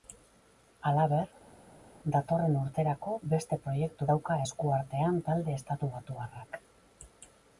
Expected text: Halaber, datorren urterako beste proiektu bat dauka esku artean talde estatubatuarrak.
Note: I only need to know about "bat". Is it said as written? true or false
false